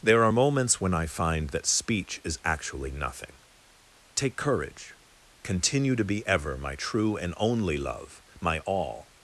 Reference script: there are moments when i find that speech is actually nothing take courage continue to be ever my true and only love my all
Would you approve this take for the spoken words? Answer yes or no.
yes